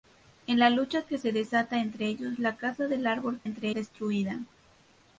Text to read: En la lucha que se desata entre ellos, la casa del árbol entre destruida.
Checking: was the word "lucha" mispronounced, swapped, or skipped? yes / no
no